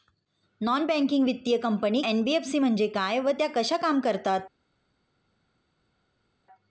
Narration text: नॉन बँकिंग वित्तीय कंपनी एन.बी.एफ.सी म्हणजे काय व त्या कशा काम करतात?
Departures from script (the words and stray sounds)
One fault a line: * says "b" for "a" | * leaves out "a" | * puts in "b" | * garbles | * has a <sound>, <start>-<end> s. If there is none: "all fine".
all fine